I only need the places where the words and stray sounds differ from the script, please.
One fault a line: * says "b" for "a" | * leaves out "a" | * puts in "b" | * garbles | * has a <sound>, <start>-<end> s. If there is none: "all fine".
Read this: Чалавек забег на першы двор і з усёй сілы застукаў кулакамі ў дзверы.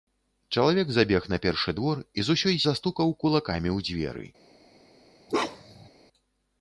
* leaves out "сілы"
* has a bark, 5.3-5.9 s